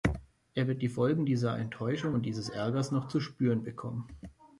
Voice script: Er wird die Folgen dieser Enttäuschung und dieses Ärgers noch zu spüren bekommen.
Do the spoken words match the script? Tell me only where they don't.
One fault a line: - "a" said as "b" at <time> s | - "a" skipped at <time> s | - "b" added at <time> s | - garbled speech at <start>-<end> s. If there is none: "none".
none